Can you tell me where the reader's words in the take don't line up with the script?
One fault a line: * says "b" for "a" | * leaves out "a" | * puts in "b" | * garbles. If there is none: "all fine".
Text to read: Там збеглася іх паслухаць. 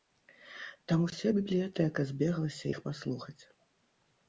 * puts in "уся бібліятэка"